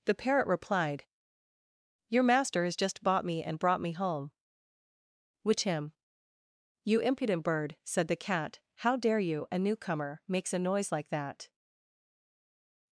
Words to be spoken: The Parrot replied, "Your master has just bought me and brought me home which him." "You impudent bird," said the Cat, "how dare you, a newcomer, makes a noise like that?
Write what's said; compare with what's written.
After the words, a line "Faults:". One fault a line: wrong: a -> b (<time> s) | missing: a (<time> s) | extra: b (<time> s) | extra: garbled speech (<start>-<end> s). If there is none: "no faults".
The Parrot replied, "Your master has just bought me and brought me home which him." "You impudent bird," said the Cat, "how dare you, a newcomer, makes a noise like that?
Faults:
no faults